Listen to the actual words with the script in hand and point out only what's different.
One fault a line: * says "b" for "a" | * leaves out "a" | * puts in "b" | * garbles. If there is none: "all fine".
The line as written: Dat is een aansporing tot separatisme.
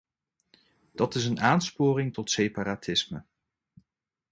all fine